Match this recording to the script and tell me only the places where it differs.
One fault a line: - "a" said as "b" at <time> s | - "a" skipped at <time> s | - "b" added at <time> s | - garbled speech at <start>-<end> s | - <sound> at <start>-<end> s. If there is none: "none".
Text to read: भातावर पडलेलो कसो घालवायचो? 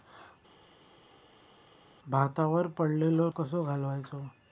none